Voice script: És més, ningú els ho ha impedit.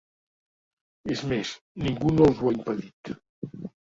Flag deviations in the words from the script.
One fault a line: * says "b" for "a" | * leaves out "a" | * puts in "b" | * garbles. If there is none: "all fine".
* puts in "no"